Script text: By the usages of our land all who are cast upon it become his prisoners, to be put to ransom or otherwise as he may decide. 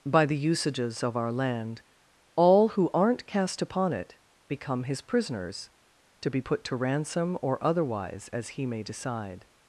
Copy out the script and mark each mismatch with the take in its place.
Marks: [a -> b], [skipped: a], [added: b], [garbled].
By the usages of our land all who [are -> aren't] cast upon it become his prisoners, to be put to ransom or otherwise as he may decide.